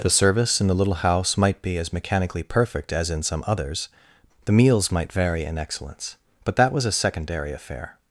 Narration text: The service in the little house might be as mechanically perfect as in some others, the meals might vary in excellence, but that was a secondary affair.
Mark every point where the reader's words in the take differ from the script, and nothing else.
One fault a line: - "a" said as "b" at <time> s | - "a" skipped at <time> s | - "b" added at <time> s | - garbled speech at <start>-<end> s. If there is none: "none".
none